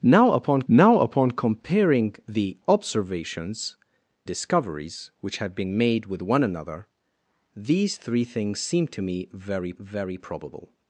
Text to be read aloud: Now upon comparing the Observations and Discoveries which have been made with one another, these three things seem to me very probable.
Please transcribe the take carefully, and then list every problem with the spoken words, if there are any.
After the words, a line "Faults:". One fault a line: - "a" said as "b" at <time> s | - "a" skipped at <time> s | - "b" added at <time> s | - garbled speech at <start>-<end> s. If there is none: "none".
Now upon now upon comparing the Observations Discoveries which have been made with one another, these three things seem to me very very probable.
Faults:
- "now upon" added at 0.7 s
- "and" skipped at 3.7 s
- "very" added at 9.8 s